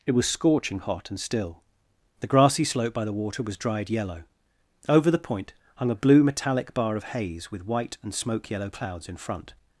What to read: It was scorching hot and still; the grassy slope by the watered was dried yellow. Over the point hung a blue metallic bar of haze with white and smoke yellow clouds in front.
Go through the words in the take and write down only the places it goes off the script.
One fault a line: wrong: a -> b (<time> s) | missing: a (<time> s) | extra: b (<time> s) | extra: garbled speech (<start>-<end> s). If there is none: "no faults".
wrong: watered -> water (3.1 s)